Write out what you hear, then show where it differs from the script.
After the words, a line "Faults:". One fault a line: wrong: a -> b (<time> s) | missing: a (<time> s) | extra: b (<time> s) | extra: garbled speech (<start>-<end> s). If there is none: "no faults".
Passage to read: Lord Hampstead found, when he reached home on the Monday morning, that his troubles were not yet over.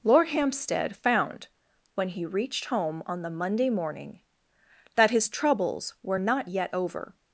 Lord Hampstead found, when he reached home on the Monday morning, that his troubles were not yet over.
Faults:
no faults